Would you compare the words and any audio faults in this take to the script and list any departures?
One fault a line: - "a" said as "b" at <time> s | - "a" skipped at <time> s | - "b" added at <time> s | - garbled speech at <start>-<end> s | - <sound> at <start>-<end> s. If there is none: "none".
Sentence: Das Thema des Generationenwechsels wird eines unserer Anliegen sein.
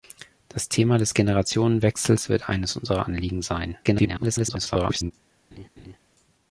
- garbled speech at 3.8-5.1 s
- laugh at 5.5-6.0 s